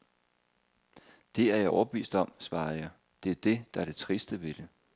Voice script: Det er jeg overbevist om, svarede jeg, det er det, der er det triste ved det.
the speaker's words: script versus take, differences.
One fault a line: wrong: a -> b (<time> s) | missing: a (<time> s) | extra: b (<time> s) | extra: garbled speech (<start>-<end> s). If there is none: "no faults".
no faults